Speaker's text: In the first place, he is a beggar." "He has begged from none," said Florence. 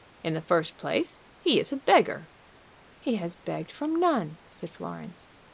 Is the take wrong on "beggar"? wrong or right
right